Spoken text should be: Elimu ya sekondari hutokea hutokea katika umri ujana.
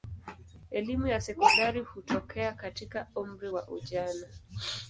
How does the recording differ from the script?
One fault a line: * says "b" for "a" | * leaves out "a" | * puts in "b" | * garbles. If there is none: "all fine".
* leaves out "hutokea"
* puts in "wa"